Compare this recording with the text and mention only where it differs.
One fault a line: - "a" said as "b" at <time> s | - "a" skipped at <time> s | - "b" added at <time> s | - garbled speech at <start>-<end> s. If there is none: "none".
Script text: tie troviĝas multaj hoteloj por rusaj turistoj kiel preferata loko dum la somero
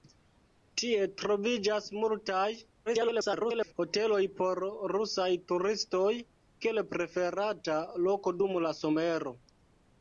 - garbled speech at 2.9-3.7 s